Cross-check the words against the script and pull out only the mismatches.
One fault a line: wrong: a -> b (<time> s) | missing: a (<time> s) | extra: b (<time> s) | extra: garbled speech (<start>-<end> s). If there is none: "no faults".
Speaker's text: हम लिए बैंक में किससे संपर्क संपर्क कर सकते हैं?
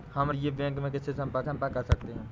no faults